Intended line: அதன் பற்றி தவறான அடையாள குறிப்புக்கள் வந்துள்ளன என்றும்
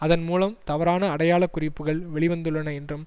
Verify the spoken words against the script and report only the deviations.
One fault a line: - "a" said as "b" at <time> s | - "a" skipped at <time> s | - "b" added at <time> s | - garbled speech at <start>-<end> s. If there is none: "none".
- "பற்றி" said as "மூலம்" at 0.2 s
- "வெளி" added at 2.1 s